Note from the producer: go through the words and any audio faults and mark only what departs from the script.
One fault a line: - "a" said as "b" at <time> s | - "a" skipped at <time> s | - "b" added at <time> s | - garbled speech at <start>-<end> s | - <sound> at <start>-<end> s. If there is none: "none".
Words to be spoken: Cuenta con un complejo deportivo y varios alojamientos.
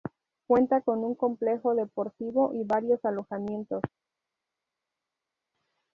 none